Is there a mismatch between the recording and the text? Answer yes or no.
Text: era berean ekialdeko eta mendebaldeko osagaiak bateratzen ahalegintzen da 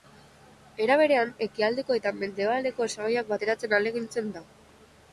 no